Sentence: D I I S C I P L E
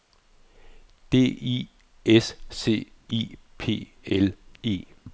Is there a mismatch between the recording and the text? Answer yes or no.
yes